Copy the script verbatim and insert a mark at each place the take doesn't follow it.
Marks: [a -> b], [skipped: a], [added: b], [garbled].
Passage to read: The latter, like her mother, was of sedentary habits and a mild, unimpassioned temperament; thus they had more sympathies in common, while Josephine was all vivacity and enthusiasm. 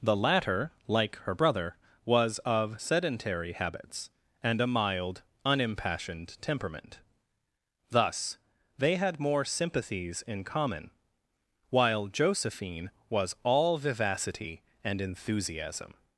The latter, like her [mother, -> brother] was of sedentary habits and a mild, unimpassioned temperament; thus they had more sympathies in common, while Josephine was all vivacity and enthusiasm.